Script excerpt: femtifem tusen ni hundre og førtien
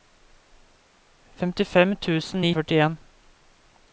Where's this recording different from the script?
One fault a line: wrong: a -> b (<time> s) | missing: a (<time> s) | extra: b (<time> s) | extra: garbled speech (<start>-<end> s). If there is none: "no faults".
missing: hundre (2.5 s)